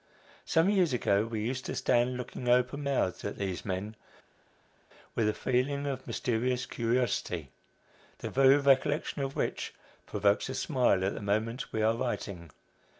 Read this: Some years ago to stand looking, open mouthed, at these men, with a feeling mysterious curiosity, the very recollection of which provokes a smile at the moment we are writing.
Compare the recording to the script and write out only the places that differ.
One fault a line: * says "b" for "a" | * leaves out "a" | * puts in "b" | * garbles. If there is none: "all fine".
* puts in "we used"
* puts in "of"